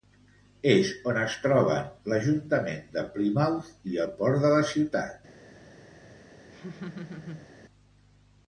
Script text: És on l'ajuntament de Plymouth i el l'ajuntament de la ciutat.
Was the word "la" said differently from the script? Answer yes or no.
no